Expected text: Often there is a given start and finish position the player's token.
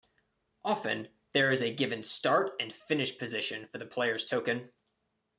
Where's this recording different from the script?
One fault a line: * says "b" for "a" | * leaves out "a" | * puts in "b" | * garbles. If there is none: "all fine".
* puts in "for"